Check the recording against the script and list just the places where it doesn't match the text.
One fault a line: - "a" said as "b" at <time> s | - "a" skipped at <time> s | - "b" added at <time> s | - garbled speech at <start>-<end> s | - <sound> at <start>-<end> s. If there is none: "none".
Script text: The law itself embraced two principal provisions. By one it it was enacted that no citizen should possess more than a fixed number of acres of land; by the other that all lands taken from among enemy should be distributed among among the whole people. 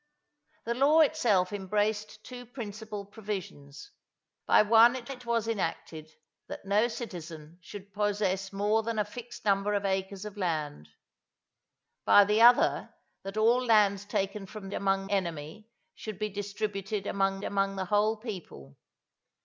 none